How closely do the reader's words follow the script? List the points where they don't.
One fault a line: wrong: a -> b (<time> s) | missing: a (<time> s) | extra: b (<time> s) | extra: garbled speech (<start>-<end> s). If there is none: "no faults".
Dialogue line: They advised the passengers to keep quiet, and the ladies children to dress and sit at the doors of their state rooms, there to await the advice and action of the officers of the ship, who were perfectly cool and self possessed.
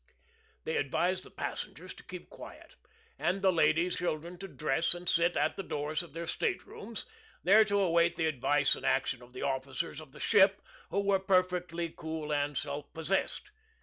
no faults